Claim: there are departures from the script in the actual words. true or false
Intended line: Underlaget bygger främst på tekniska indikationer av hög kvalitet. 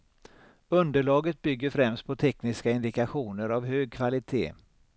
false